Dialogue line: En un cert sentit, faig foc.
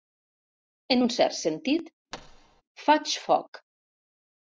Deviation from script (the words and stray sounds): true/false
true